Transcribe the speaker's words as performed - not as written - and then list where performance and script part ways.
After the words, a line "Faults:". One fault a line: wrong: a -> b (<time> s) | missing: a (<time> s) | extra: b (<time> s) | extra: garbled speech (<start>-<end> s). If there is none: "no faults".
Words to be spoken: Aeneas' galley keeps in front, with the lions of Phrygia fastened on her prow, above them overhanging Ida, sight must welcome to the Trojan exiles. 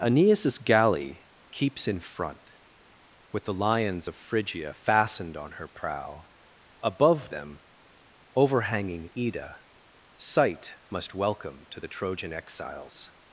Aeneas' galley keeps in front, with the lions of Phrygia fastened on her prow, above them overhanging Ida, sight must welcome to the Trojan exiles.
Faults:
no faults